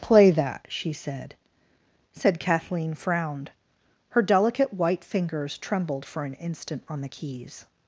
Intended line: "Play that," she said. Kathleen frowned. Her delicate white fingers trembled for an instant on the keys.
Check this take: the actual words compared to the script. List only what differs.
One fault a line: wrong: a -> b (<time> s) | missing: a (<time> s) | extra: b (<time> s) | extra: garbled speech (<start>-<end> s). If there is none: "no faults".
extra: said (2.1 s)